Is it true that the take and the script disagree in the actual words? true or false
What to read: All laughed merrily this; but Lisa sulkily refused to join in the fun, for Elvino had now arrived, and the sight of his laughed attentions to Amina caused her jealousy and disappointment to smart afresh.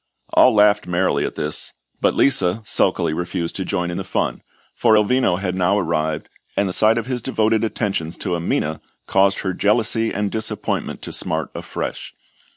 true